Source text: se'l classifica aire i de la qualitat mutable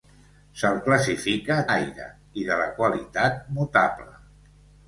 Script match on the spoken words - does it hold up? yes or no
yes